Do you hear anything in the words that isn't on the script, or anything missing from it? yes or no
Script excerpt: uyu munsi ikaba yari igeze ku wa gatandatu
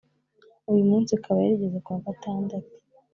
no